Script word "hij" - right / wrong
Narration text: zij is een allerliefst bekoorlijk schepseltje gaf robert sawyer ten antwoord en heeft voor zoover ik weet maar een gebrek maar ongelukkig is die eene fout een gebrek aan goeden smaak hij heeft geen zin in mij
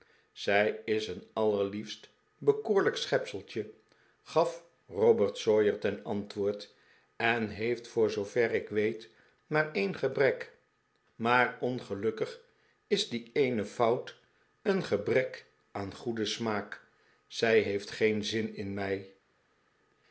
wrong